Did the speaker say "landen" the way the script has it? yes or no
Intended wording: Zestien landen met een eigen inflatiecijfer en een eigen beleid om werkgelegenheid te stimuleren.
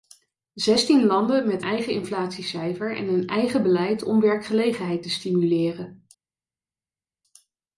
yes